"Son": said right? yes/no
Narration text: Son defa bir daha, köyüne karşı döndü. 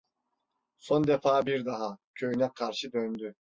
yes